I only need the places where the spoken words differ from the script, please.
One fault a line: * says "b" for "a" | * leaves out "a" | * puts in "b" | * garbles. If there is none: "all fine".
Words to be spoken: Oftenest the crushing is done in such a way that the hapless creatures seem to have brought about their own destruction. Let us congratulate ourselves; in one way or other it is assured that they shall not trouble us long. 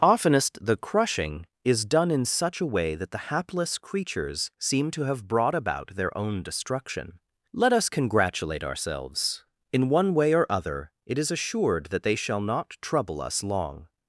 all fine